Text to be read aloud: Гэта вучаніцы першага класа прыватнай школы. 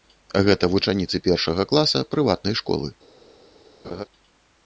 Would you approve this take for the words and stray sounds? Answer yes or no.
no